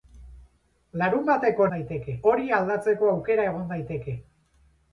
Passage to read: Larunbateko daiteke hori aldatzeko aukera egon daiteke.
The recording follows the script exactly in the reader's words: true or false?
true